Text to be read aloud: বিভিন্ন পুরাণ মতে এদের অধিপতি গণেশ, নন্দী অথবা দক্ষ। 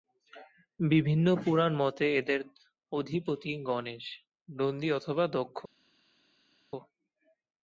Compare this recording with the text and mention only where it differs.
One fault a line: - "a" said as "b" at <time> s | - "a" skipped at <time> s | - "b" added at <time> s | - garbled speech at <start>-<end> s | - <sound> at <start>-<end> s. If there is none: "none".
none